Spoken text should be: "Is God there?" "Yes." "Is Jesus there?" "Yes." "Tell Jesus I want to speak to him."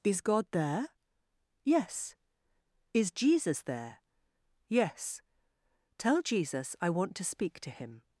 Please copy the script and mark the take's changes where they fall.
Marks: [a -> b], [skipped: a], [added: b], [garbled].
"Is God there?" "Yes." "Is Jesus there?" "Yes." "Tell Jesus I want to speak to him."